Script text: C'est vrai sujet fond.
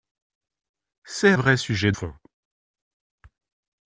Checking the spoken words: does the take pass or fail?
pass